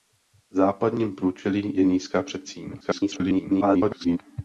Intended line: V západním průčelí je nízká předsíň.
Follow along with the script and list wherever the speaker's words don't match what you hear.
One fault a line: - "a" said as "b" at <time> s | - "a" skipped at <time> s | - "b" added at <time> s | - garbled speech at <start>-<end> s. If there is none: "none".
- garbled speech at 2.8-4.2 s